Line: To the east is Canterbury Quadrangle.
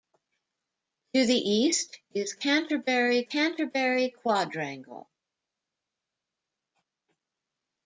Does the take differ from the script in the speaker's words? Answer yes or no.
yes